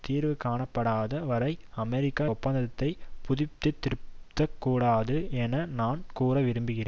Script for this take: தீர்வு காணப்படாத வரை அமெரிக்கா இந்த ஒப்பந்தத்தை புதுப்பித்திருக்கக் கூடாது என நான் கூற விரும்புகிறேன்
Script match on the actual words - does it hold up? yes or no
no